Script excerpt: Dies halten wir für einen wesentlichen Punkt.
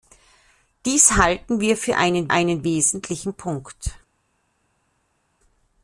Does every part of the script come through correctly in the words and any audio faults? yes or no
no